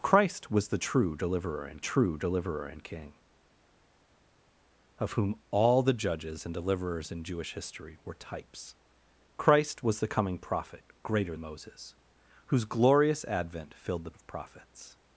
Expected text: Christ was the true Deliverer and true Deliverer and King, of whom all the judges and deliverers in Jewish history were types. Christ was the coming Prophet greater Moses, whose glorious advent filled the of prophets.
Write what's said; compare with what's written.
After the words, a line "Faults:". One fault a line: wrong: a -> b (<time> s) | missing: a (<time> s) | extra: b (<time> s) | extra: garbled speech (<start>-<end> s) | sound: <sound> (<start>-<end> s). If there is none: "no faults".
Christ was the true Deliverer and true Deliverer and King, of whom all the judges and deliverers in Jewish history were types. Christ was the coming Prophet greater Moses, whose glorious advent filled the of prophets.
Faults:
no faults